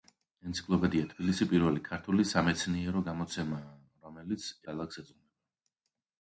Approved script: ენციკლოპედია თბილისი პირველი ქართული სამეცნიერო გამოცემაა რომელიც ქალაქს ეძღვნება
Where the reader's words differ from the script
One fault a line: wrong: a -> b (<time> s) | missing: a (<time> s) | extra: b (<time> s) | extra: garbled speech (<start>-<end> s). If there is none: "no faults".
no faults